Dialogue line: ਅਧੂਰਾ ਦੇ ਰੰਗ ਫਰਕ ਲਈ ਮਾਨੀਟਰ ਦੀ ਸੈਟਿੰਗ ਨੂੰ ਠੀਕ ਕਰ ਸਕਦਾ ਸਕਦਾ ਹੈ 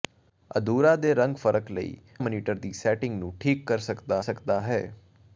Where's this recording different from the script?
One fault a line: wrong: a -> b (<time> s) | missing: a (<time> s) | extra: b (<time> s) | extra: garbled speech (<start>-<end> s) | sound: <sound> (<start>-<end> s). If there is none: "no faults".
no faults